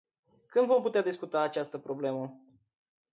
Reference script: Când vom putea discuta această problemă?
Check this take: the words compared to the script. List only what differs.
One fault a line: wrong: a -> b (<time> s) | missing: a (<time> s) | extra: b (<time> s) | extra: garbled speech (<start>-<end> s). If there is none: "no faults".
no faults